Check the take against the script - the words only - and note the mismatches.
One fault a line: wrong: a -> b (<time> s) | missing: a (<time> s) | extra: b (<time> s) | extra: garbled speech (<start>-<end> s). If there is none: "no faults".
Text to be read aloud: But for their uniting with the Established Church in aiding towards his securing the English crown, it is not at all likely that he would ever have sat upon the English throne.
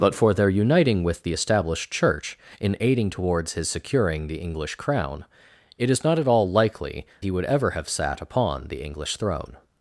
missing: that (7.1 s)